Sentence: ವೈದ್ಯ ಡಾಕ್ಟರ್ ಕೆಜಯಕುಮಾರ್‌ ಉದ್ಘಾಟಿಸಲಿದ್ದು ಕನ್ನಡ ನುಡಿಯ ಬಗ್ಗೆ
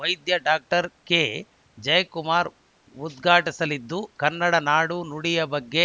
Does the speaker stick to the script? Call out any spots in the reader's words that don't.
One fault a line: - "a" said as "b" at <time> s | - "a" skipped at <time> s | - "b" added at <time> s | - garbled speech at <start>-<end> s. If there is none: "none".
- "ನಾಡು" added at 4.6 s